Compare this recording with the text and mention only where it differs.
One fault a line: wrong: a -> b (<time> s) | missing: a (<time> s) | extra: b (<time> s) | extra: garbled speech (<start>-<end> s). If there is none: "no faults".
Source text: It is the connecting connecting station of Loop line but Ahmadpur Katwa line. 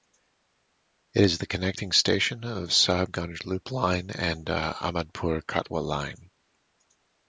missing: connecting (1.9 s)
extra: Sahibganj (2.7 s)
wrong: but -> and (4.1 s)